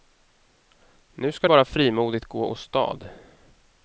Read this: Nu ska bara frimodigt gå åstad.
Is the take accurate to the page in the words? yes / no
yes